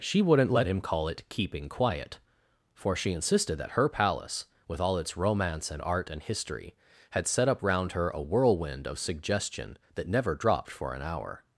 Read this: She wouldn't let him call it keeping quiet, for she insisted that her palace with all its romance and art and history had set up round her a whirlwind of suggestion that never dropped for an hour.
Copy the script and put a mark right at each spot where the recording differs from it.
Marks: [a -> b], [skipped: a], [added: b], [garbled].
She wouldn't let him call it keeping quiet, for she insisted that her palace with all its romance and art and history had set up round her a whirlwind of suggestion that never dropped for an hour.